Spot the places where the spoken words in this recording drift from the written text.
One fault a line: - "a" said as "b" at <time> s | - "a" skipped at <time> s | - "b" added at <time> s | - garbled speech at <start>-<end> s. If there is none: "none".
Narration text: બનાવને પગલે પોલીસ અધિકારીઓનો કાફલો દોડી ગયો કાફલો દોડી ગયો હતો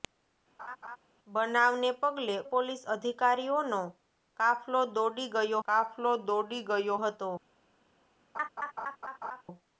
none